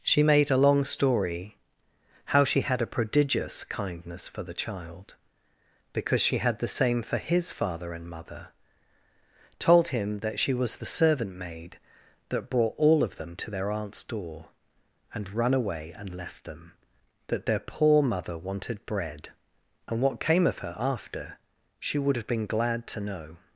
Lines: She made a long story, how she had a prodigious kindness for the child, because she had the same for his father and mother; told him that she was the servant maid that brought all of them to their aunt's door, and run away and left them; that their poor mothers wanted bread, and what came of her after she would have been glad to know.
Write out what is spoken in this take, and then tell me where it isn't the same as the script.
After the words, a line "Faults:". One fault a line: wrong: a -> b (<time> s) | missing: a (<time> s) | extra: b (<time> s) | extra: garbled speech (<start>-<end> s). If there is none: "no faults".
She made a long story, how she had a prodigious kindness for the child, because she had the same for his father and mother; told him that she was the servant maid that brought all of them to their aunt's door, and run away and left them; that their poor mother wanted bread, and what came of her after she would have been glad to know.
Faults:
wrong: mothers -> mother (18.0 s)